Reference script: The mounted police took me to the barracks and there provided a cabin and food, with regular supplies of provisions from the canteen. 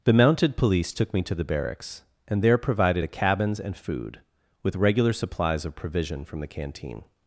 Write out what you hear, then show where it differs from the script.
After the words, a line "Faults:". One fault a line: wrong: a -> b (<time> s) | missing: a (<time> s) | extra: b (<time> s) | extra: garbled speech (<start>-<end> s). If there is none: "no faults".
The mounted police took me to the barracks and there provided a cabins and food, with regular supplies of provision from the canteen.
Faults:
wrong: cabin -> cabins (3.1 s)
wrong: provisions -> provision (5.7 s)